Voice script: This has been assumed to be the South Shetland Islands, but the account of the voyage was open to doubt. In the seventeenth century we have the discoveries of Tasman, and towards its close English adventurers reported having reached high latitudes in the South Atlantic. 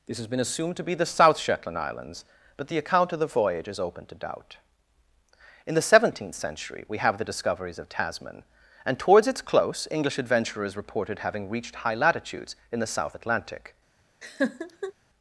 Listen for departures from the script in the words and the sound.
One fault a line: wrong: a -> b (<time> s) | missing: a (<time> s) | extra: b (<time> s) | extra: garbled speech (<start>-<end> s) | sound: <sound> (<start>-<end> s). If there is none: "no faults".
wrong: was -> is (3.7 s)
sound: laugh (14.2-14.9 s)